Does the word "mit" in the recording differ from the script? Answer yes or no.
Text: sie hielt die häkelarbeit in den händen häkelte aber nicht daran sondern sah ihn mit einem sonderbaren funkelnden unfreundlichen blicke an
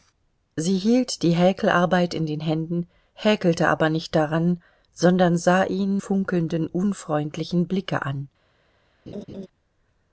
yes